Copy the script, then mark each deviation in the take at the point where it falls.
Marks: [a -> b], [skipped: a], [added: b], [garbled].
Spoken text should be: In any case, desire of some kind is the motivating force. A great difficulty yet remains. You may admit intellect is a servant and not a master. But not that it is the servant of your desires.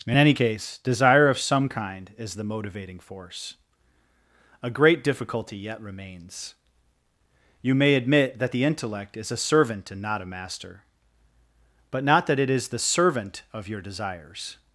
In any case, desire of some kind is the motivating force. A great difficulty yet remains. You may admit [added: that the] intellect is a servant and not a master. But not that it is the servant of your desires.